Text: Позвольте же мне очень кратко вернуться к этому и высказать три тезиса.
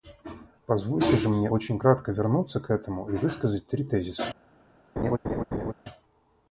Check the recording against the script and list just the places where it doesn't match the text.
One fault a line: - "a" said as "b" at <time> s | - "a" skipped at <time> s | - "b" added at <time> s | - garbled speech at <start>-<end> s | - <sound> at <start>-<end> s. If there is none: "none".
- laugh at 5.0-5.7 s